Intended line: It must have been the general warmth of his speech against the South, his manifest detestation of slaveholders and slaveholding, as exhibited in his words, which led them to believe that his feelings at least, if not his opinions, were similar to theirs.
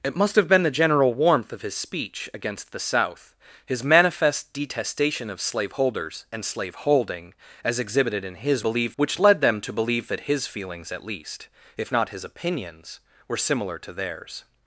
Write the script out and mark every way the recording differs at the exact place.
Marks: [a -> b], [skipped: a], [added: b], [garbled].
It must have been the general warmth of his speech against the South, his manifest detestation of slaveholders and slaveholding, as exhibited in his [words, -> believe] which led them to believe that his feelings at least, if not his opinions, were similar to theirs.